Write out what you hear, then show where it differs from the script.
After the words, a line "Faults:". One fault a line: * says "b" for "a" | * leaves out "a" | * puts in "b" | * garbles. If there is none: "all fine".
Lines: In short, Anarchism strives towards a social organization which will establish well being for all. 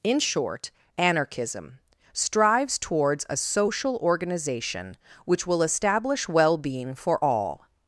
In short, Anarchism strives towards a social organization which will establish well being for all.
Faults:
all fine